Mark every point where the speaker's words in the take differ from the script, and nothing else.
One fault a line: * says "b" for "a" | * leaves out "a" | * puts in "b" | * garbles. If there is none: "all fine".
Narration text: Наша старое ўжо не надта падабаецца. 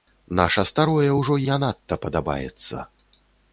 all fine